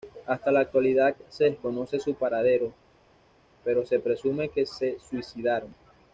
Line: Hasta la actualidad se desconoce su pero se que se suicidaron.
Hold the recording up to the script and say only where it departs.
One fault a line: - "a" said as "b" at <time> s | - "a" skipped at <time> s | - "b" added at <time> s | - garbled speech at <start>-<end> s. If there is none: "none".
- "paradero" added at 2.1 s
- "presume" added at 4.0 s